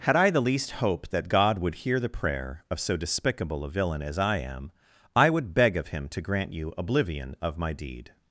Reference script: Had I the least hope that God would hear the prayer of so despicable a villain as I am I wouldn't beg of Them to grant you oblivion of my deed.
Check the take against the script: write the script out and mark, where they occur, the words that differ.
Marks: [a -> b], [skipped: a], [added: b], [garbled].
Had I the least hope that God would hear the prayer of so despicable a villain as I am I [wouldn't -> would] beg of [Them -> Him] to grant you oblivion of my deed.